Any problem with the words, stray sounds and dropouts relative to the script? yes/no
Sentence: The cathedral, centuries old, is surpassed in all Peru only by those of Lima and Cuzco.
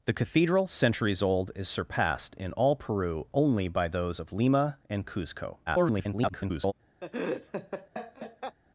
yes